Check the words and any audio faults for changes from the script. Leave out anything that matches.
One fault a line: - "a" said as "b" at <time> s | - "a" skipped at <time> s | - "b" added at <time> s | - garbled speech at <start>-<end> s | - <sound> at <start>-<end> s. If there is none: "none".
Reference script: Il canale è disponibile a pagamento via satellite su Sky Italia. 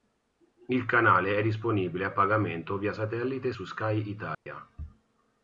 - dropout at 4.3-4.5 s